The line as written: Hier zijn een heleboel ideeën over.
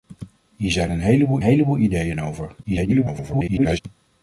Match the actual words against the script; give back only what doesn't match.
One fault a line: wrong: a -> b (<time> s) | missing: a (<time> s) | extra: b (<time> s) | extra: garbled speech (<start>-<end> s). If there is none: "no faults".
extra: heleboel (1.4 s)
extra: garbled speech (2.6-3.8 s)